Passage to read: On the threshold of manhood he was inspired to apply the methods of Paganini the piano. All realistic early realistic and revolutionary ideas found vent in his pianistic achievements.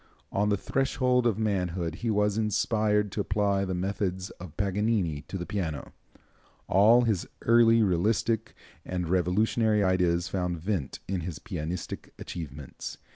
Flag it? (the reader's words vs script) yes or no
yes